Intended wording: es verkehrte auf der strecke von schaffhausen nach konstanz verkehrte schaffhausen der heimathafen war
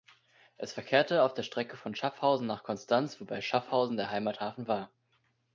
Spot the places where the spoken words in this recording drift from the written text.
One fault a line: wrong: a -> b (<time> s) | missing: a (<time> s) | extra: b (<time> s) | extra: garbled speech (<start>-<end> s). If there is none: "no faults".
wrong: verkehrte -> wobei (3.2 s)